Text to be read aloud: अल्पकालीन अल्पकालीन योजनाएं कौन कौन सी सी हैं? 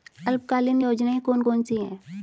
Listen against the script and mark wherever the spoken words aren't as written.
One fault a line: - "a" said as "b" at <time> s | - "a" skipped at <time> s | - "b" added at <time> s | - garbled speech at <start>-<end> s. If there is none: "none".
- "अल्पकालीन" skipped at 0.8 s
- "सी" skipped at 1.8 s